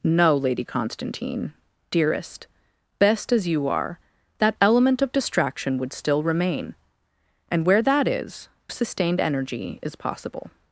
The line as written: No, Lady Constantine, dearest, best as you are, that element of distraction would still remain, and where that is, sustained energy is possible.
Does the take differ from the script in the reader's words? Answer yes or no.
no